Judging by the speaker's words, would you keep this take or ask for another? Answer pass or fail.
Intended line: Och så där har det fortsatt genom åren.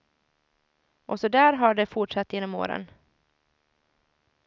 pass